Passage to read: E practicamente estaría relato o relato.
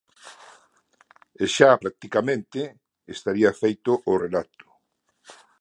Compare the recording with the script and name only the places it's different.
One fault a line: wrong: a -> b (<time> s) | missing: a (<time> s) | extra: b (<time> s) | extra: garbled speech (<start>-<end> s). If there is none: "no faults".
extra: xa (1.6 s)
wrong: relato -> feito (3.6 s)